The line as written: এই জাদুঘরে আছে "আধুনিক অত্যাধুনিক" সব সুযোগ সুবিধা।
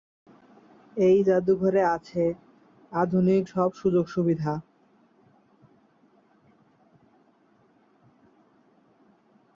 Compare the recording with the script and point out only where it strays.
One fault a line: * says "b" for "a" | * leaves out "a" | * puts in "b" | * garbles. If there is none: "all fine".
* leaves out "অত্যাধুনিক"